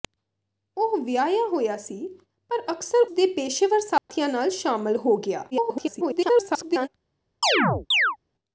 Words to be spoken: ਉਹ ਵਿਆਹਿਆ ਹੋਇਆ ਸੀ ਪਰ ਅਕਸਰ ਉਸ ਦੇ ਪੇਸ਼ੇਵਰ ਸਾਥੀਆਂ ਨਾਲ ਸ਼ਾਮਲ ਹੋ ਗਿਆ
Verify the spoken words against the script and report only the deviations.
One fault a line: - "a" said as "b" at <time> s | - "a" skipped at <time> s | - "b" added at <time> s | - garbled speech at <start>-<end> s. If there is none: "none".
- "ਉਸ" skipped at 3.1 s
- garbled speech at 5.5-6.9 s